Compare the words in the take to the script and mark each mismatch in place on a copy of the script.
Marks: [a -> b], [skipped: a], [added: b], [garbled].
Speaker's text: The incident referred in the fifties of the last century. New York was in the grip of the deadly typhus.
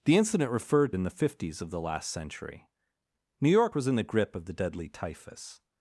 The incident referred in the fifties of the last century. New York was in the grip of the deadly typhus.